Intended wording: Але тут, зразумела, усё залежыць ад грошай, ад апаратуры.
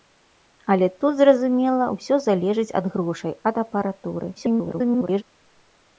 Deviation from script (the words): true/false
true